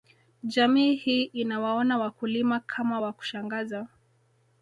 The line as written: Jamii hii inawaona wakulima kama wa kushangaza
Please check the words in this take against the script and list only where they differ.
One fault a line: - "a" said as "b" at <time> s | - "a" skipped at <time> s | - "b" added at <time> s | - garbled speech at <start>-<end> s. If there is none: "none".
none